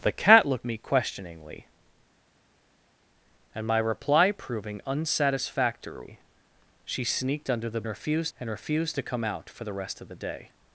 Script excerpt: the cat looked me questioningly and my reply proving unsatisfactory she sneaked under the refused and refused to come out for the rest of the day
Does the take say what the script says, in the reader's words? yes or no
yes